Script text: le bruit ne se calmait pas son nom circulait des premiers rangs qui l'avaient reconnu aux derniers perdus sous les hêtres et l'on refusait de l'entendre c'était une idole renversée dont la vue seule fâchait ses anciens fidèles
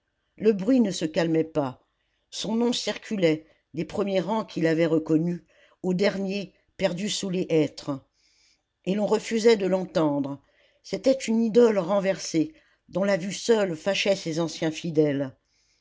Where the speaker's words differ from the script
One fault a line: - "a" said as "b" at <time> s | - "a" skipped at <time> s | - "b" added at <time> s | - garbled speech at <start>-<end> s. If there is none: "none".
none